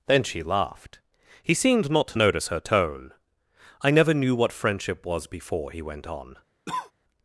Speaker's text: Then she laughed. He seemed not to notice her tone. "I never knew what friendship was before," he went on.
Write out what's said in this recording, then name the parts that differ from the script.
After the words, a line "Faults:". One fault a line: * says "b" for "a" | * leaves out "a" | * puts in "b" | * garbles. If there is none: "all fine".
Then she laughed. He seemed not to notice her tone. "I never knew what friendship was before," he went on.
Faults:
all fine